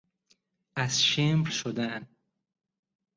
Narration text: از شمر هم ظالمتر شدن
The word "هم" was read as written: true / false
false